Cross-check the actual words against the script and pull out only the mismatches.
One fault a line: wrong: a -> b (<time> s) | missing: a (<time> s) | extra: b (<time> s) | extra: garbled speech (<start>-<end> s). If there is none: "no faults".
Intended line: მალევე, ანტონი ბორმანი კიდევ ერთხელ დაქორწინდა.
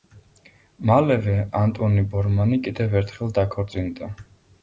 no faults